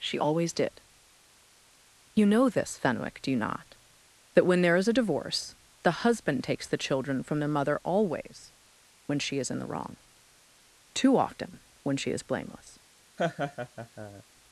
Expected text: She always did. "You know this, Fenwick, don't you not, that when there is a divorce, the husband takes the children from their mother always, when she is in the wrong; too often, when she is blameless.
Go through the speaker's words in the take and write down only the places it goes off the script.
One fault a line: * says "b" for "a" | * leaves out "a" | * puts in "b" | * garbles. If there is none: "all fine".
* says "do" for "don't"